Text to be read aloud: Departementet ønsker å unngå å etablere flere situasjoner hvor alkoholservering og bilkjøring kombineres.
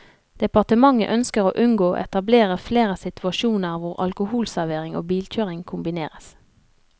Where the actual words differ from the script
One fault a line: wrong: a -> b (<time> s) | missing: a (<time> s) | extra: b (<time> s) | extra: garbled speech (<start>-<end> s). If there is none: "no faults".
no faults